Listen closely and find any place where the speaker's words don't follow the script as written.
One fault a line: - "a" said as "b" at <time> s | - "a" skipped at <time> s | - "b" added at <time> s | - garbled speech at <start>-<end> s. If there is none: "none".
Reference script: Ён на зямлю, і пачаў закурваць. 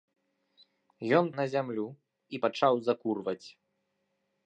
none